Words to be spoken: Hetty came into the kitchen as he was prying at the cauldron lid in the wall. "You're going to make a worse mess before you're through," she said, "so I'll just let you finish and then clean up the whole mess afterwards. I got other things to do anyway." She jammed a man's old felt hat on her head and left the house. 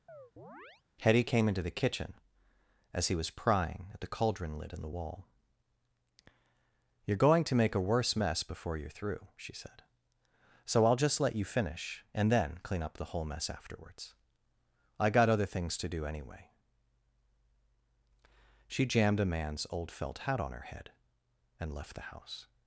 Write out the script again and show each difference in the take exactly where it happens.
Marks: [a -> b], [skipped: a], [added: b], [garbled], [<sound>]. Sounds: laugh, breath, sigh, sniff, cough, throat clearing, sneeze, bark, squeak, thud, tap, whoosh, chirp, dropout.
[chirp] Hetty came into the kitchen as he was prying at the cauldron lid in the wall. "You're going to make a worse mess before you're through," she said, "so I'll just let you finish and then clean up the whole mess afterwards. I got other things to do anyway." She jammed a man's old felt hat on her head and left the house.